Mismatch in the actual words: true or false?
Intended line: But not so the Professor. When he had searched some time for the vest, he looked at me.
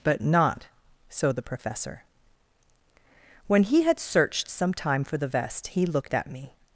false